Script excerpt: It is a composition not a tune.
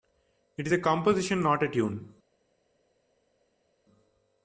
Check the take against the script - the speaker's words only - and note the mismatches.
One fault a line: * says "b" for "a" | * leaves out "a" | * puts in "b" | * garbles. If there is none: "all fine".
all fine